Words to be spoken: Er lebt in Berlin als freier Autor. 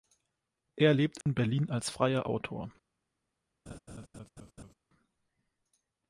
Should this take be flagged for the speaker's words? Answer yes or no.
no